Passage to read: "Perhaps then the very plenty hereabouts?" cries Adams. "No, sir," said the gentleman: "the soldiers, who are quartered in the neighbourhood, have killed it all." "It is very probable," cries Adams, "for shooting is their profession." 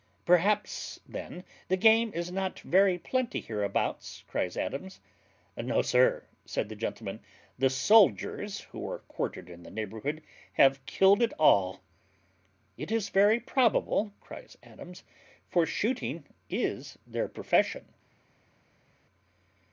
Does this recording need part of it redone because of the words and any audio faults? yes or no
yes